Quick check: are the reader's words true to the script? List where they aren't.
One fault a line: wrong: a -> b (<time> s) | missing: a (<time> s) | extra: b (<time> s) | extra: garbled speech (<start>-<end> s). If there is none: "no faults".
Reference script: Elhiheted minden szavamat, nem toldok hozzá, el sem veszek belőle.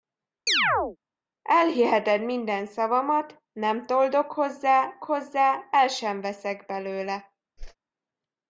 extra: hozzá (5.0 s)